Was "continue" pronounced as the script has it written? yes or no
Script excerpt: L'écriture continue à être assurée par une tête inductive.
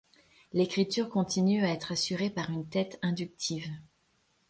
yes